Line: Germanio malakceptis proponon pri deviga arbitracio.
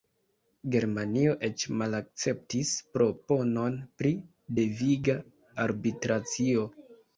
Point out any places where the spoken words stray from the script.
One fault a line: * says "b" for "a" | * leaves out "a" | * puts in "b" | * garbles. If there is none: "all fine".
* puts in "eĉ"